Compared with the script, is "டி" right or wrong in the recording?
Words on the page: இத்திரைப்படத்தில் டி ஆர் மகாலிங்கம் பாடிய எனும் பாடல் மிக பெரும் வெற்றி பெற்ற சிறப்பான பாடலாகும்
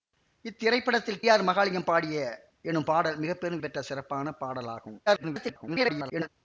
wrong